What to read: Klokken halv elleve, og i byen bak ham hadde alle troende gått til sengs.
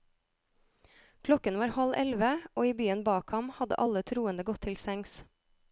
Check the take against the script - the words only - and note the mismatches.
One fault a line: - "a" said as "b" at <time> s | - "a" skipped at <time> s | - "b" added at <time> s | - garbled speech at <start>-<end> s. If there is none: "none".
- "var" added at 1.6 s